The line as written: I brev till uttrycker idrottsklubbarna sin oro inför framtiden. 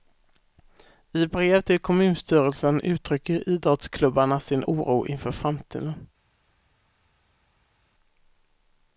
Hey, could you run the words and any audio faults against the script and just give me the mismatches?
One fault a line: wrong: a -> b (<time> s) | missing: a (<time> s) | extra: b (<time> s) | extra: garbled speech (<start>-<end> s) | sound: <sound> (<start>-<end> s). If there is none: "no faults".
extra: kommunstyrelsen (1.8 s)